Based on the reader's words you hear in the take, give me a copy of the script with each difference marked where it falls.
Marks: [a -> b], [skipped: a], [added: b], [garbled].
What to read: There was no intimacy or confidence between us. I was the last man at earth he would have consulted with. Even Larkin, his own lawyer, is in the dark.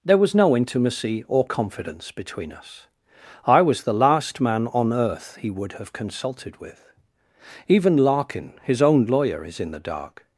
There was no intimacy or confidence between us. I was the last man [at -> on] earth he would have consulted with. Even Larkin, his own lawyer, is in the dark.